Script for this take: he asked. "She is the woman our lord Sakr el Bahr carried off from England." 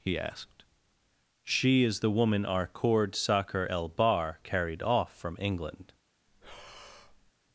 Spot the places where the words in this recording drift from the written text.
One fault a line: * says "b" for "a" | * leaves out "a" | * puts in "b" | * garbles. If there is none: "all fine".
* says "cord" for "lord"